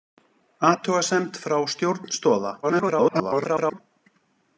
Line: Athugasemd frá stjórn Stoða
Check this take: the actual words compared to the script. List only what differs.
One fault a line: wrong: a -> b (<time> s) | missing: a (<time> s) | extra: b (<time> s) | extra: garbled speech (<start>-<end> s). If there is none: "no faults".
extra: garbled speech (2.6-3.8 s)